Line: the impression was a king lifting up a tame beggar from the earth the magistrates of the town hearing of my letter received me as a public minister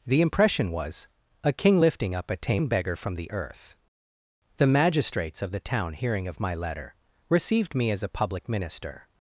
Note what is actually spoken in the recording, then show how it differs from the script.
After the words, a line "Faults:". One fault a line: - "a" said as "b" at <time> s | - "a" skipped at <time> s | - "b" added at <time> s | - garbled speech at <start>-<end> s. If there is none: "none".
the impression was a king lifting up a tame beggar from the earth the magistrates of the town hearing of my letter received me as a public minister
Faults:
none